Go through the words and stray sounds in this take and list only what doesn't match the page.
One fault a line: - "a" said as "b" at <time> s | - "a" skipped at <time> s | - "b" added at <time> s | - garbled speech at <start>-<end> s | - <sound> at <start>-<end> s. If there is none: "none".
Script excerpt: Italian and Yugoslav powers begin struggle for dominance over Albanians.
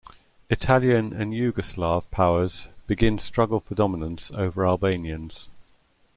none